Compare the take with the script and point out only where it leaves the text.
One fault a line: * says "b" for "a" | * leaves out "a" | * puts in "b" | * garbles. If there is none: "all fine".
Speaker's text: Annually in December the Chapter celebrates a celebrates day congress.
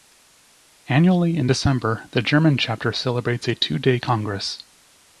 * puts in "German"
* says "two" for "celebrates"